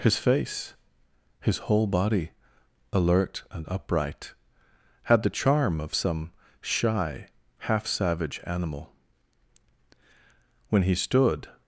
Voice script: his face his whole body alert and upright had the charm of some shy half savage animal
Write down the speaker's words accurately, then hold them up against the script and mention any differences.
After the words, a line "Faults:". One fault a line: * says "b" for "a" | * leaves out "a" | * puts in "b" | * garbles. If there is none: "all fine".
his face his whole body alert and upright had the charm of some shy half savage animal when he stood
Faults:
* puts in "when he stood"